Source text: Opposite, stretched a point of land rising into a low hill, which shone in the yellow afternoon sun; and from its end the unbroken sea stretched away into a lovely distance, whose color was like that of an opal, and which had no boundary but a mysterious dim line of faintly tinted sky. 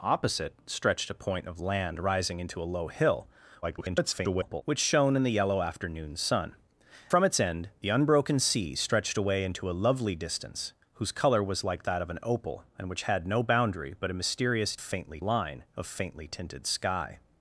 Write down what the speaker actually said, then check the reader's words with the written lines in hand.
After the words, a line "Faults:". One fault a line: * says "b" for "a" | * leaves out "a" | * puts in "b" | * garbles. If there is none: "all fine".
Opposite, stretched a point of land rising into a low hill, [garbled] which shone in the yellow afternoon sun; from its end the unbroken sea stretched away into a lovely distance, whose color was like that of an opal, and which had no boundary but a mysterious faintly line of faintly tinted sky.
Faults:
* garbles
* leaves out "and"
* says "faintly" for "dim"